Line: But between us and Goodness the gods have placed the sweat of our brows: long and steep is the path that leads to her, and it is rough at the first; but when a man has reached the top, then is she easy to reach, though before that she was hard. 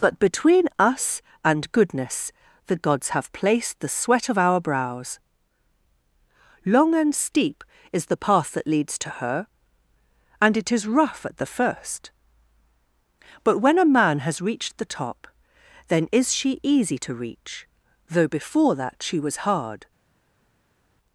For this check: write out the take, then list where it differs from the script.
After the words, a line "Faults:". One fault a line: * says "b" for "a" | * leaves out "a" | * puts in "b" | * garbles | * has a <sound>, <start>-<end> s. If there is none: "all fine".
But between us and Goodness the gods have placed the sweat of our brows: long and steep is the path that leads to her, and it is rough at the first; but when a man has reached the top, then is she easy to reach, though before that she was hard.
Faults:
all fine